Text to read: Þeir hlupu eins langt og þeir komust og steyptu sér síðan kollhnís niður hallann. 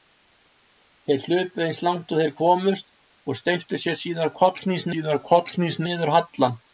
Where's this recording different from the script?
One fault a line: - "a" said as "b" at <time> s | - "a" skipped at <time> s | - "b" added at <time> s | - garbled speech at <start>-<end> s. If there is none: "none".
- "síðan kollhnís" added at 4.9 s